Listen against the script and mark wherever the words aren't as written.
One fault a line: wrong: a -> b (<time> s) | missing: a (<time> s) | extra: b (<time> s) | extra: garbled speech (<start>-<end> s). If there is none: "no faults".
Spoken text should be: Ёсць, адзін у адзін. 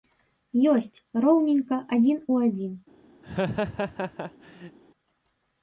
extra: роўненька (1.3 s)